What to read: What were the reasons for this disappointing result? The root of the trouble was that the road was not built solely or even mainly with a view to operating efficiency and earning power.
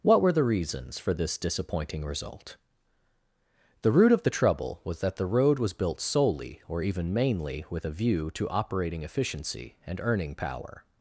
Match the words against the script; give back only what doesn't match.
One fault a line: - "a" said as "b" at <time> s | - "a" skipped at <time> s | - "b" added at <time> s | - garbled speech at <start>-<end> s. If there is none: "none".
- "not" skipped at 5.7 s